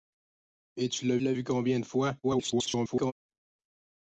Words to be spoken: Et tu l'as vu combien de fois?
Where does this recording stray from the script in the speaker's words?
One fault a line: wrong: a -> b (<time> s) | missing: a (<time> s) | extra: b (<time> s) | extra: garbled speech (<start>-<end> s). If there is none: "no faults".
extra: l'as (1.2 s)
extra: garbled speech (2.2-3.1 s)